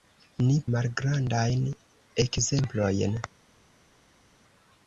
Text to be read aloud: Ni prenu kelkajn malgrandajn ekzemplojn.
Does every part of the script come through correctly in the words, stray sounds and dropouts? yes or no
no